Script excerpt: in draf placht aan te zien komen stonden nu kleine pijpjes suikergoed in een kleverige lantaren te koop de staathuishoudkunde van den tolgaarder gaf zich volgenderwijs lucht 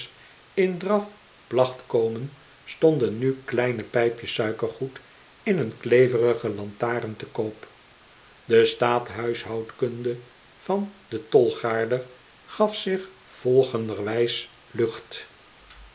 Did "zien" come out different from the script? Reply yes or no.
yes